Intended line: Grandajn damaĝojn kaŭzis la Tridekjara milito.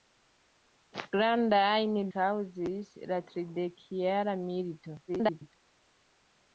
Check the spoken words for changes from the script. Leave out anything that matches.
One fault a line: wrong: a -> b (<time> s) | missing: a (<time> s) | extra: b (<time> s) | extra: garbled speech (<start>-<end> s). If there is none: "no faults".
missing: damaĝojn (1.9 s)
extra: garbled speech (5.1-5.5 s)